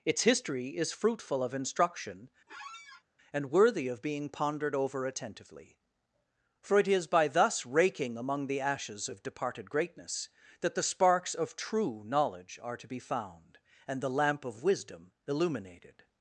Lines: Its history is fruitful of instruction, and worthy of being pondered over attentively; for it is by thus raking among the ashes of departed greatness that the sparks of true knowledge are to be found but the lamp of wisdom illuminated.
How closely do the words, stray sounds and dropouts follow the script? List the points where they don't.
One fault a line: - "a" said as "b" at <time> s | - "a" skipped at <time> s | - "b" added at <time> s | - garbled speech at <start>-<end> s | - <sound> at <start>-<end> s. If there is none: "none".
- squeak at 2.5-3.0 s
- "but" said as "and" at 13.9 s